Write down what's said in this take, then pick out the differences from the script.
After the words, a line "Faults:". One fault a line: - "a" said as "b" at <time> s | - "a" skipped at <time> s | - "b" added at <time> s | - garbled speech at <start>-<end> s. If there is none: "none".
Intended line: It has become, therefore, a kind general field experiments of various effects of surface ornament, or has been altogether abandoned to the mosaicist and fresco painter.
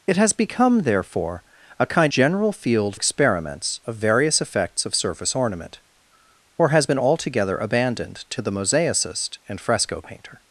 It has become, therefore, a kind general field experiments of various effects of surface ornament, or has been altogether abandoned to the mosaicist and fresco painter.
Faults:
none